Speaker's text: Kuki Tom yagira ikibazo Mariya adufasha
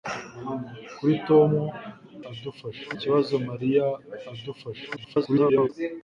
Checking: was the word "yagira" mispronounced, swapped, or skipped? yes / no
yes